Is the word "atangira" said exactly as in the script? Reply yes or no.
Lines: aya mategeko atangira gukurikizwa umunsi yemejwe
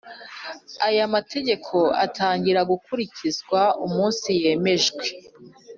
yes